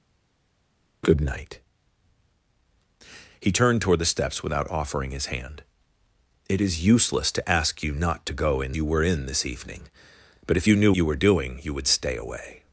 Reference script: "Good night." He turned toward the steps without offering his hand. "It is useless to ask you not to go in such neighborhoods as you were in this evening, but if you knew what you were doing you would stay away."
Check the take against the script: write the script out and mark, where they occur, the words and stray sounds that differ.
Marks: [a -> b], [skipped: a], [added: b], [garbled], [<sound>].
"Good night." He turned toward the steps without offering his hand. "It is useless to ask you not to go in [skipped: such neighborhoods as] you were in this evening, but if you knew [skipped: what] you were doing you would stay away."